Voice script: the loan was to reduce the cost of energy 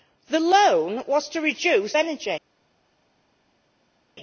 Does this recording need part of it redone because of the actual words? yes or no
yes